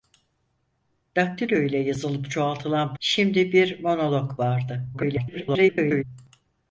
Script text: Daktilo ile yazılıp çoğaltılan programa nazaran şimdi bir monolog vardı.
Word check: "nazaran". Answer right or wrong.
wrong